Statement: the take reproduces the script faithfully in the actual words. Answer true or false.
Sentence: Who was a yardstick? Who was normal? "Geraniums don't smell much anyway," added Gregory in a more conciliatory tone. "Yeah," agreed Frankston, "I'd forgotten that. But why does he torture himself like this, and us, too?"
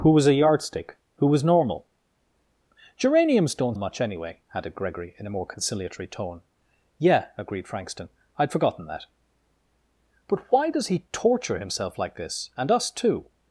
false